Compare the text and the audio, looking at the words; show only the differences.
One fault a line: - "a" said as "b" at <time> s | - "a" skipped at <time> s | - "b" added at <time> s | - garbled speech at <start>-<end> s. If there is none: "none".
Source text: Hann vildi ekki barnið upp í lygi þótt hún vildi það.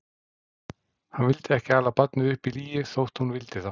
- "ala" added at 1.8 s